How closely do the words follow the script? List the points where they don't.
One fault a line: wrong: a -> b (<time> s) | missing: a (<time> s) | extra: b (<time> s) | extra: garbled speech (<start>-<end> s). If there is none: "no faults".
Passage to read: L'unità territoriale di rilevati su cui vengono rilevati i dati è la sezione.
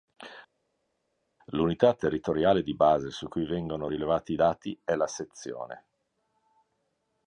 wrong: rilevati -> base (2.7 s)